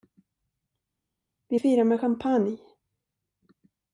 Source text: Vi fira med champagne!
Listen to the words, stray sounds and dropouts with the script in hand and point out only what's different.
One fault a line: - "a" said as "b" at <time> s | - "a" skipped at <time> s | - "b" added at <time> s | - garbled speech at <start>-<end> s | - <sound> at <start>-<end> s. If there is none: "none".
none